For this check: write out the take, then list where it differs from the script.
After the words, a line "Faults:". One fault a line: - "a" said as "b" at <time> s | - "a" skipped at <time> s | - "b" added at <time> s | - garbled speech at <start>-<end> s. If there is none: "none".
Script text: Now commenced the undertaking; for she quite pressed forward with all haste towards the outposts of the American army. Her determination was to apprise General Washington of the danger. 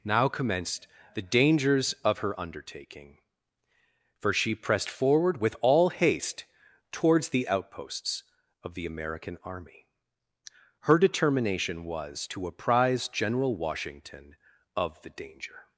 Now commenced the dangers of her undertaking; for she pressed forward with all haste towards the outposts of the American army. Her determination was to apprise General Washington of the danger.
Faults:
- "dangers of her" added at 1.2 s
- "quite" skipped at 4.5 s